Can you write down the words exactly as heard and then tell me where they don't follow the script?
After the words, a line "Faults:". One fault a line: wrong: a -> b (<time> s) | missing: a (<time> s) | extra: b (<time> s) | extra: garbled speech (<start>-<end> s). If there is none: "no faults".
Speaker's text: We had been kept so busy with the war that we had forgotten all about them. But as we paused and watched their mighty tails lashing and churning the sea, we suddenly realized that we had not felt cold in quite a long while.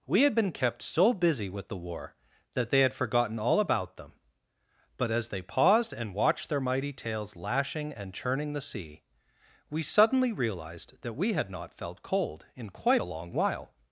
We had been kept so busy with the war that they had forgotten all about them. But as they paused and watched their mighty tails lashing and churning the sea, we suddenly realized that we had not felt cold in quite a long while.
Faults:
wrong: we -> they (2.7 s)
wrong: we -> they (5.3 s)